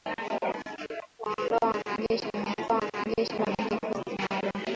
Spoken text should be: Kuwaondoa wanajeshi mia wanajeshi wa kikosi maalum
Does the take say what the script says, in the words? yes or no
yes